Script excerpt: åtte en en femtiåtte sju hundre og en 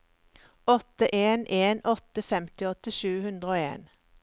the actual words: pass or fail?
fail